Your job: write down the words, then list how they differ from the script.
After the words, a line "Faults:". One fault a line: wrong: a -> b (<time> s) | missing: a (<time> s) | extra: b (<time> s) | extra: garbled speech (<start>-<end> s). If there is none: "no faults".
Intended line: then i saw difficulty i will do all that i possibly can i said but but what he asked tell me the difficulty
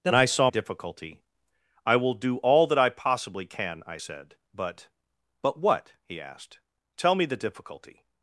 then i saw difficulty i will do all that i possibly can i said but but what he asked tell me the difficulty
Faults:
no faults